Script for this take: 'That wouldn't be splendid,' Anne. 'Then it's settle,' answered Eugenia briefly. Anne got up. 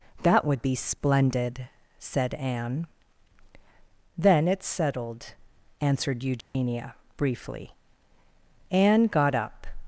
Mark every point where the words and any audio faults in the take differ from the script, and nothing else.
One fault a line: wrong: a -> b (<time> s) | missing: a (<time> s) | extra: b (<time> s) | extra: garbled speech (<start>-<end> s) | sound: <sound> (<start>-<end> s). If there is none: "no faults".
wrong: wouldn't -> would (0.5 s)
extra: said (2.0 s)
wrong: settle -> settled (4.7 s)
sound: dropout (6.4-6.5 s)